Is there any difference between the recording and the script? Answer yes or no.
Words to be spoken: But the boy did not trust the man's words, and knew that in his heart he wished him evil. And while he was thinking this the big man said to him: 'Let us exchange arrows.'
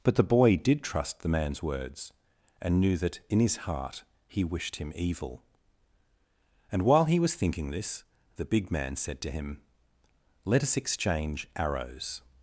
yes